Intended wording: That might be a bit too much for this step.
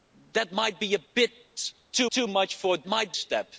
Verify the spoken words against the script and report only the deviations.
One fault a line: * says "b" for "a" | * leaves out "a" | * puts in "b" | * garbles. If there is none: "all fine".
* puts in "too"
* says "might" for "this"